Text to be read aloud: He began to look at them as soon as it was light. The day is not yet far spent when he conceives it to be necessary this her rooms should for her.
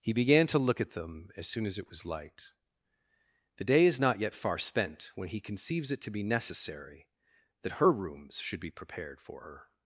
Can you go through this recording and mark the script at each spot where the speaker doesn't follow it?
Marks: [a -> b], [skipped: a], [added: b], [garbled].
He began to look at them as soon as it was light. The day is not yet far spent when he conceives it to be necessary [this -> that] her rooms should [added: be prepared] for her.